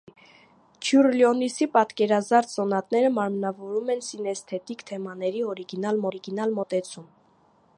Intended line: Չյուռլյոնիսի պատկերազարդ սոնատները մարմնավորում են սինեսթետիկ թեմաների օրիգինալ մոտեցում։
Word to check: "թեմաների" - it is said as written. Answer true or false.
true